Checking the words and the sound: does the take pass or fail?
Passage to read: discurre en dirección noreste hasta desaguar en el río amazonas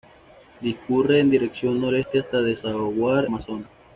fail